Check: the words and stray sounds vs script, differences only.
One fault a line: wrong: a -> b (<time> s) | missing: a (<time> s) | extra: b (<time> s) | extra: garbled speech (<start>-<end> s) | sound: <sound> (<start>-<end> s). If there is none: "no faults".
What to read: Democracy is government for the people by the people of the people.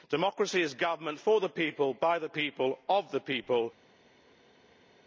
no faults